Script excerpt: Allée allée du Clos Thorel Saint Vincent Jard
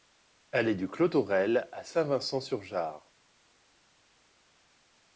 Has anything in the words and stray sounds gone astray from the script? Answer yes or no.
yes